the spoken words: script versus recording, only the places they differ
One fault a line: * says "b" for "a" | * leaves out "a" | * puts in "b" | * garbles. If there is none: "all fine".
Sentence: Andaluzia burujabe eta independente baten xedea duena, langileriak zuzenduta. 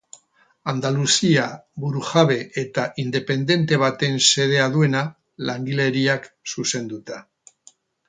all fine